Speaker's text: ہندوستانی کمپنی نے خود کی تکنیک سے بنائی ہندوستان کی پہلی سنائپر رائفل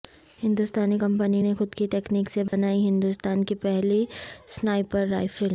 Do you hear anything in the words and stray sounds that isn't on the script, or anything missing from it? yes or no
yes